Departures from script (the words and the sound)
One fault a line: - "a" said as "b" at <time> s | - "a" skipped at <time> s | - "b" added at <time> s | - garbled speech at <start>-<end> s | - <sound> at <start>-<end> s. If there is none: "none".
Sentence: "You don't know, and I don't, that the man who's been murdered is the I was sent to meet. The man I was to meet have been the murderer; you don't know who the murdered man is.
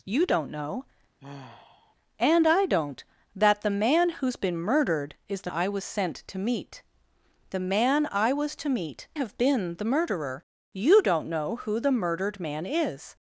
- sigh at 1.2-1.9 s